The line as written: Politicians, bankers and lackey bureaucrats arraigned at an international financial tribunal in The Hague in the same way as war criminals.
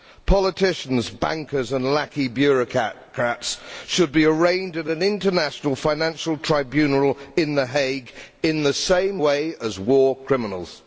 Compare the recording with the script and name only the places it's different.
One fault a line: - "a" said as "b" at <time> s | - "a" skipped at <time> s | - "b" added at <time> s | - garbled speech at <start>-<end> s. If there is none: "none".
- "should be" added at 3.9 s